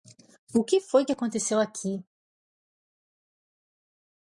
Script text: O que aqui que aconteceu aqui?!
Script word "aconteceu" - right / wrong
right